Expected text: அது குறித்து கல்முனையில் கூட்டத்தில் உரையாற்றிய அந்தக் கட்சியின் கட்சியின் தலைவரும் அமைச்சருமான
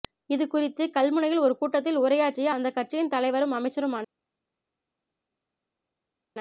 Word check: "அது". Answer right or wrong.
wrong